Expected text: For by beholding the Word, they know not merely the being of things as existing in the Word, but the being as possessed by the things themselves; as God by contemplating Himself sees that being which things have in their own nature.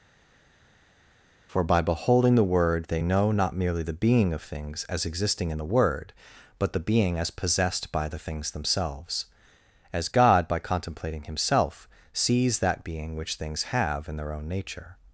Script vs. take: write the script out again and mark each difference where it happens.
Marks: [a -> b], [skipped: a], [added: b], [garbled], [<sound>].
For by beholding the Word, they know not merely the being of things as existing in the Word, but the being as possessed by the things themselves; as God by contemplating Himself sees that being which things have in their own nature.